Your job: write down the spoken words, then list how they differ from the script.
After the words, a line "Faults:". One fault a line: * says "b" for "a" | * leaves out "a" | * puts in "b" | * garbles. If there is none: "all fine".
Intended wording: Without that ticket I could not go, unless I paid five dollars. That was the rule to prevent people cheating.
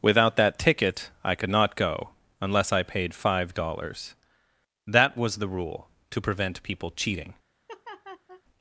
Without that ticket I could not go, unless I paid five dollars. That was the rule to prevent people cheating.
Faults:
all fine